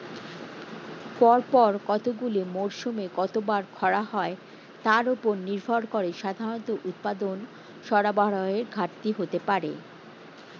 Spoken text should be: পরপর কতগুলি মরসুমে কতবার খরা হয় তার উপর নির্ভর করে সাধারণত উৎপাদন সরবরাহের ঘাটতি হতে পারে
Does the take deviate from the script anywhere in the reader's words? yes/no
no